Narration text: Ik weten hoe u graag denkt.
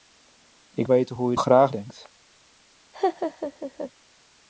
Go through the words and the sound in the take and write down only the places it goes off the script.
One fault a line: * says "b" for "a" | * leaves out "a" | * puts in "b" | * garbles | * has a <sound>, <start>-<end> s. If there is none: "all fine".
* has a laugh, 2.9-3.9 s